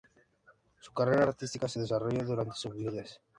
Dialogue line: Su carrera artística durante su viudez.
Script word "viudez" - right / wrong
right